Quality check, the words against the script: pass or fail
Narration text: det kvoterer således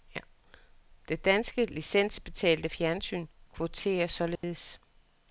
fail